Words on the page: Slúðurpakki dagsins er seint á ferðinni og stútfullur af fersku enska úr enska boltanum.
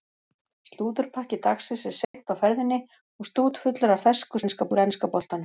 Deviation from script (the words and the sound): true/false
true